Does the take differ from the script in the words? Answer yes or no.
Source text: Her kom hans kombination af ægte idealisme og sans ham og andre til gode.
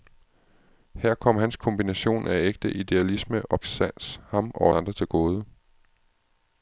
no